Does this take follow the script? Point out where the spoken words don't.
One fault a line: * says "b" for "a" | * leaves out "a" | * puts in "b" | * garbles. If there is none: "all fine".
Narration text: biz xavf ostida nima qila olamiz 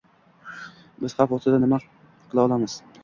all fine